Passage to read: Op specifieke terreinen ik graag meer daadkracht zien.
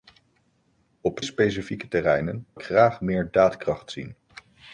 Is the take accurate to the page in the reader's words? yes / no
yes